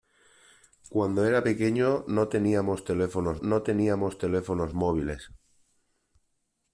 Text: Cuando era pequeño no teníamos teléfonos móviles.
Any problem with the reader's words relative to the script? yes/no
yes